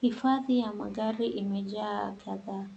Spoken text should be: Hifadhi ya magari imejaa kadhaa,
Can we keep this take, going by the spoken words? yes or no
yes